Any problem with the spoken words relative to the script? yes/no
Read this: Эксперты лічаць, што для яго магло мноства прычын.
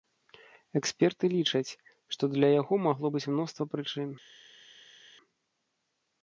yes